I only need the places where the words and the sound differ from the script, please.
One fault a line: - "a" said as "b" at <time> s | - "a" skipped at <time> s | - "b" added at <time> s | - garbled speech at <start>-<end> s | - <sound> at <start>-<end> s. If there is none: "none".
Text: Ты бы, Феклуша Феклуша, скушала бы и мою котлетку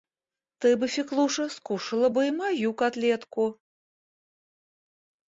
- "Феклуша" skipped at 1.5 s